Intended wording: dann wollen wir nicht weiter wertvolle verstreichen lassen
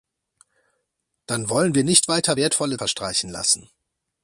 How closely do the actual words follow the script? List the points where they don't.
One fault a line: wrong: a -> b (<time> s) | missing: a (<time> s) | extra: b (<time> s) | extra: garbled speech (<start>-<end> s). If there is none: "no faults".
no faults